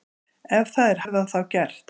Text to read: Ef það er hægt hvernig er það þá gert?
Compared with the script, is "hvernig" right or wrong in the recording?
wrong